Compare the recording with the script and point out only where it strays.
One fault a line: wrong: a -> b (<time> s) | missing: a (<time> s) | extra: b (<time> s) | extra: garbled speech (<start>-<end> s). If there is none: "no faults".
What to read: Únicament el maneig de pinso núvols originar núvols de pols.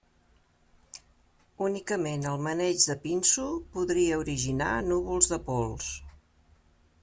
wrong: núvols -> podria (3.8 s)